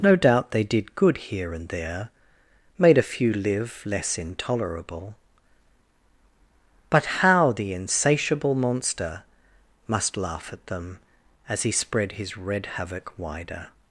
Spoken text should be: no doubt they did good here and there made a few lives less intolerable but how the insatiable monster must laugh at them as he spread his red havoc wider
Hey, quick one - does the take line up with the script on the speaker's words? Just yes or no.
no